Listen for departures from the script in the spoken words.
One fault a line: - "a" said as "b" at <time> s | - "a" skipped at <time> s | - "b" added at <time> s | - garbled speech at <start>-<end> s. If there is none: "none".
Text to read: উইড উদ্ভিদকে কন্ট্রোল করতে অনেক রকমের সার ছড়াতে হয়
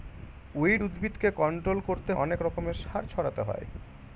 none